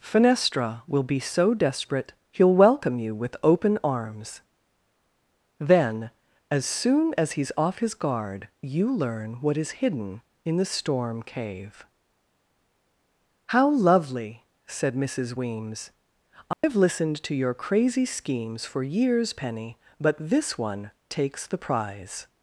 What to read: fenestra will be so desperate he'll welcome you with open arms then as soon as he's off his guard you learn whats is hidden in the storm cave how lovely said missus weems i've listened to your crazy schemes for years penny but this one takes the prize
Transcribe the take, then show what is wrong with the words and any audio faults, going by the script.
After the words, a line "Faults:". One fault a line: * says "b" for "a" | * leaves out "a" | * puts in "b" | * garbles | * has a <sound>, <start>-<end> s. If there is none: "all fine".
fenestra will be so desperate he'll welcome you with open arms then as soon as he's off his guard you learn what is hidden in the storm cave how lovely said missus weems i've listened to your crazy schemes for years penny but this one takes the prize
Faults:
* says "what" for "whats"
* has a dropout, 16.5-16.6 s